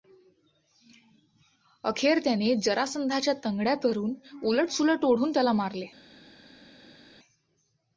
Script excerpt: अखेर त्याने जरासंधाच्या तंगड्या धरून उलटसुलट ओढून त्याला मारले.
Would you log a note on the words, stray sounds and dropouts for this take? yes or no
no